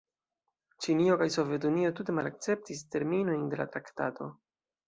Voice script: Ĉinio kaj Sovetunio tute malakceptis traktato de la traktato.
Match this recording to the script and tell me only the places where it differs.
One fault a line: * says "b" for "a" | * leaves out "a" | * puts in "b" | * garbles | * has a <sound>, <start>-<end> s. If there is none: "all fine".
* says "terminojn" for "traktato"